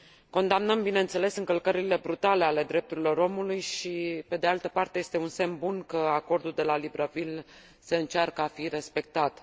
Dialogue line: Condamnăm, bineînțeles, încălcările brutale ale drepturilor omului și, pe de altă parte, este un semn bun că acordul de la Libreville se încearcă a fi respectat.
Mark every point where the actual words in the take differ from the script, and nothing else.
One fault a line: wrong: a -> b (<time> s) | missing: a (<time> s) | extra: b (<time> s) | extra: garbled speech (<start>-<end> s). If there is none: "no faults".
no faults